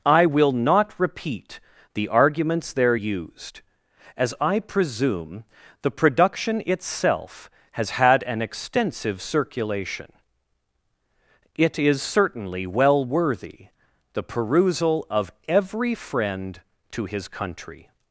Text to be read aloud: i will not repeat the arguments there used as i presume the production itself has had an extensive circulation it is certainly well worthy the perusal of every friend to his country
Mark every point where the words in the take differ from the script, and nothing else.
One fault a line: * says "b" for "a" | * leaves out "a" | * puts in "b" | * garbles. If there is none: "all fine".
all fine